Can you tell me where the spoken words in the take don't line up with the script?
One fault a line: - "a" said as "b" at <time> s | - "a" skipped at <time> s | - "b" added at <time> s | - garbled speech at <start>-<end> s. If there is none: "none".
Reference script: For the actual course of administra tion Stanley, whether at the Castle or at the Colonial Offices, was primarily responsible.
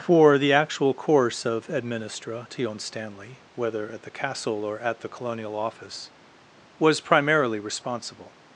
- "Offices" said as "Office" at 5.5 s